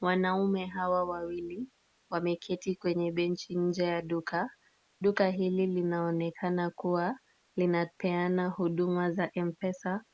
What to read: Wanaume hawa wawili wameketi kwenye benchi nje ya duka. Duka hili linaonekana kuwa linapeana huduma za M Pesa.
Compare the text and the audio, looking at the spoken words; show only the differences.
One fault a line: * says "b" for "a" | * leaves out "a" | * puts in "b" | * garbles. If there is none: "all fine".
all fine